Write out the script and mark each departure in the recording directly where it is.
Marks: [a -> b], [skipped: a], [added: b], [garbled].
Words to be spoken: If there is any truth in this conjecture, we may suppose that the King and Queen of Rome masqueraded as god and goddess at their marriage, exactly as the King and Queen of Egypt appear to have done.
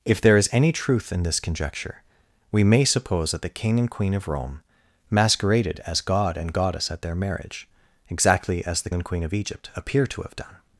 If there is any truth in this conjecture, we may suppose that the King and Queen of Rome masqueraded as god and goddess at their marriage, exactly as the [skipped: King] and Queen of Egypt appear to have done.